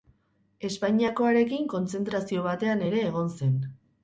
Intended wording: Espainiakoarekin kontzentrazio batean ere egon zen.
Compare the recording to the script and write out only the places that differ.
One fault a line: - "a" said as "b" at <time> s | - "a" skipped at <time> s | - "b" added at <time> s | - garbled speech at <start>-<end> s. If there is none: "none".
none